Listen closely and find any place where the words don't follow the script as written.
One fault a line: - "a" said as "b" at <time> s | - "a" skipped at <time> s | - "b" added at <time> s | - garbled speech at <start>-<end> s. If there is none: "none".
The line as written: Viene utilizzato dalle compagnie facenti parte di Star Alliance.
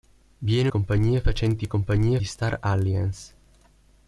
- "utilizzato dalle" skipped at 0.7 s
- "parte" said as "compagnie" at 1.7 s